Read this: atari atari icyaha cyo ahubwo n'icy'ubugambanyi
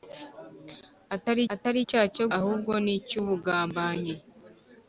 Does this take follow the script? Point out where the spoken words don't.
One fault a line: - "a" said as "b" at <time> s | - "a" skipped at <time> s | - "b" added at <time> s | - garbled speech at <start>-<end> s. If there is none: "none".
none